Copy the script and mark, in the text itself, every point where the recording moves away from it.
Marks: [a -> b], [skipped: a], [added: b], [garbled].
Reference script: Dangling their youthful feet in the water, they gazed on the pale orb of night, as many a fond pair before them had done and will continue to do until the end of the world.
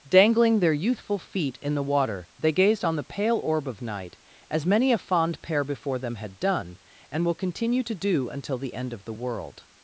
Dangling their youthful feet in the water, they gazed on the pale orb of night, as many a fond pair before them had done and will continue to do until the end of the world.